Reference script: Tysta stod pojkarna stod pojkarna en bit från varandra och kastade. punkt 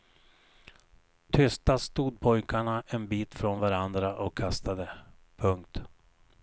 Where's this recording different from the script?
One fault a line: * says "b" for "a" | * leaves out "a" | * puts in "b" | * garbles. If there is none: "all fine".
* leaves out "stod pojkarna"